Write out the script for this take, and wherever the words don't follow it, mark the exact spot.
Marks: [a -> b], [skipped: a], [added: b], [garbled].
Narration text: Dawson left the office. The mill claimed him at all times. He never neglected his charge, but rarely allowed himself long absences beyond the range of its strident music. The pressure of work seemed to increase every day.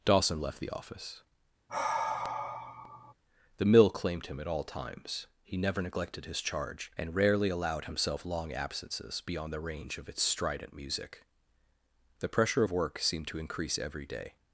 Dawson left the office. The mill claimed him at all times. He never neglected his charge, [but -> and] rarely allowed himself long absences beyond the range of its strident music. The pressure of work seemed to increase every day.